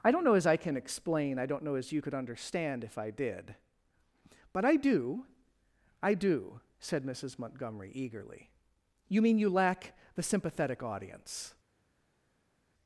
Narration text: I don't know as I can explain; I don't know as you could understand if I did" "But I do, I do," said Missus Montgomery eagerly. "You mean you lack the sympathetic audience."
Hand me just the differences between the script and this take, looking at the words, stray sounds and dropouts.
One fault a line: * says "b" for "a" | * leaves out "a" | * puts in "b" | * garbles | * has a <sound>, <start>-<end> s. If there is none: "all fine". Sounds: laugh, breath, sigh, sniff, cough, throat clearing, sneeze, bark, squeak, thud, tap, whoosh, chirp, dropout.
all fine